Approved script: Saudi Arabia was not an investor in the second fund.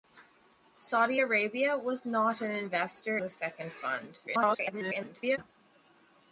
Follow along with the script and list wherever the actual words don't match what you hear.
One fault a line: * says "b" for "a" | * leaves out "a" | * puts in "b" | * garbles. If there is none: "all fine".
* leaves out "in"
* garbles